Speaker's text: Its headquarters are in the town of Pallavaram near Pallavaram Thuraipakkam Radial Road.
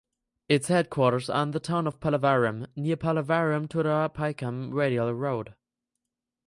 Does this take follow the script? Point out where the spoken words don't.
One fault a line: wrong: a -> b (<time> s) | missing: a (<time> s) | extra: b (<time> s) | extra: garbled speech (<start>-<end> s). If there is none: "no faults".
no faults